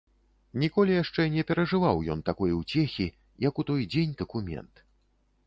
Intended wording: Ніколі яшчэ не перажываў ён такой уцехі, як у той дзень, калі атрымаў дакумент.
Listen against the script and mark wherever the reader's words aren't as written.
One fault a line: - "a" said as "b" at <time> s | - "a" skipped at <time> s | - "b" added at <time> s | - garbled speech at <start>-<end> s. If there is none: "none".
- "калі атрымаў" skipped at 4.2 s